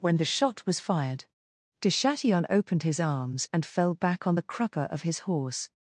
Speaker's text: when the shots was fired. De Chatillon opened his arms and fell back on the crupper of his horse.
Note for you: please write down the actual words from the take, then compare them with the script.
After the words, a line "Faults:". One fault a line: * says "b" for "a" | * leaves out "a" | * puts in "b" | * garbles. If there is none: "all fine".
when the shot was fired. De Chatillon opened his arms and fell back on the crupper of his horse.
Faults:
* says "shot" for "shots"